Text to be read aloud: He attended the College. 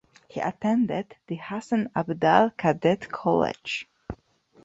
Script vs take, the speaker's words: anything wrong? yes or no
yes